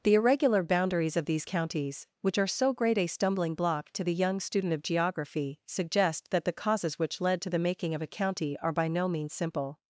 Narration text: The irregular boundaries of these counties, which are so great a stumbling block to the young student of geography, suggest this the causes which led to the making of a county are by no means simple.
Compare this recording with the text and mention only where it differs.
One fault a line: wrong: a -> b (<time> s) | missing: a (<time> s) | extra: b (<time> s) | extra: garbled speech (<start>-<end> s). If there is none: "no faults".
wrong: this -> that (6.3 s)